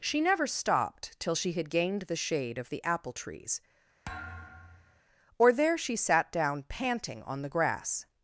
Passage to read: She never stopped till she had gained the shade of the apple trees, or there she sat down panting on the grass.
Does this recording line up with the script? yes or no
yes